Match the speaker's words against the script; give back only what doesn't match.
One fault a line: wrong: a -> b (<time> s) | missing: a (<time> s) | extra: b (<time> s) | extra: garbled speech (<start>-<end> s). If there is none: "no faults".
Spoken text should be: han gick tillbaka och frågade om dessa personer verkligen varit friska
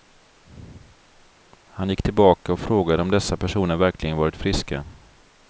no faults